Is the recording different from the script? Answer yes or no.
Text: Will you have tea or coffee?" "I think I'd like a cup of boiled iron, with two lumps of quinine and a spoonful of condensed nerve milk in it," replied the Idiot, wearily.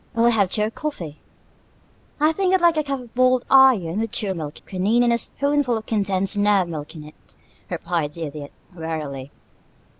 yes